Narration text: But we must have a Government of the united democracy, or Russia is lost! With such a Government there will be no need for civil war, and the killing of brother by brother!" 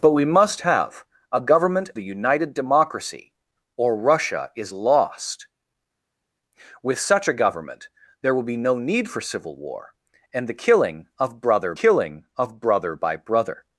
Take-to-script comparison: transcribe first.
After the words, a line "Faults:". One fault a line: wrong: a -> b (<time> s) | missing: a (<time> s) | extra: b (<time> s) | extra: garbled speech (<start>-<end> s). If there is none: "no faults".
But we must have a Government the united democracy, or Russia is lost! With such a Government there will be no need for civil war, and the killing of brother killing of brother by brother!"
Faults:
missing: of (1.9 s)
extra: killing of brother (11.8 s)